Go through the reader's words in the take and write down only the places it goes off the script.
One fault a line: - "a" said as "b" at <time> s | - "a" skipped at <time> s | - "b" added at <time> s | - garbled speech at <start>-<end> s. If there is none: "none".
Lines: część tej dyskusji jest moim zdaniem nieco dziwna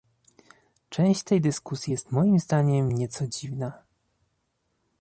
none